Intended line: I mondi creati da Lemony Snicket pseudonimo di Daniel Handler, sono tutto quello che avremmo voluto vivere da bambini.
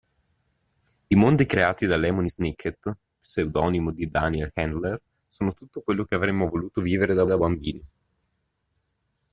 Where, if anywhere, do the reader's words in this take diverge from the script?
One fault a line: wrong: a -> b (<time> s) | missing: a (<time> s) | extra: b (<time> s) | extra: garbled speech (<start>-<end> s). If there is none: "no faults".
extra: da (7.3 s)